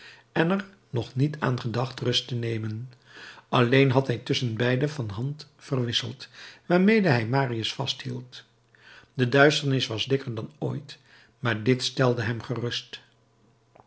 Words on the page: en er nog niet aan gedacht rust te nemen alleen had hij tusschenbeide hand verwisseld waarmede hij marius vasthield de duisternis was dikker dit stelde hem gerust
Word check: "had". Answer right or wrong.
right